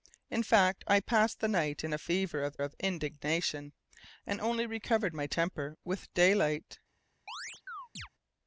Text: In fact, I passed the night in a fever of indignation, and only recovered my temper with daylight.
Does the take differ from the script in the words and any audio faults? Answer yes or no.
yes